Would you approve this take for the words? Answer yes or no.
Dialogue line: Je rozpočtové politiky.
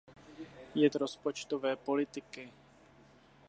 yes